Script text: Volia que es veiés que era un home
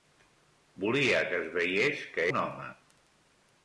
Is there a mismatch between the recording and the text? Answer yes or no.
yes